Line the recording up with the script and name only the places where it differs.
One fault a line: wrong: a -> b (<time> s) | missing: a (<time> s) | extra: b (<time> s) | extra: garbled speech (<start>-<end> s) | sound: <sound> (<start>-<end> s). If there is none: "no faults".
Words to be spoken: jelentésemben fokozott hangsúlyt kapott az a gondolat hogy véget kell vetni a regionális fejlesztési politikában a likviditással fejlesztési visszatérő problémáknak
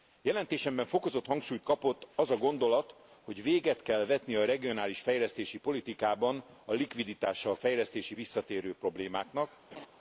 sound: laugh (9.7-9.9 s)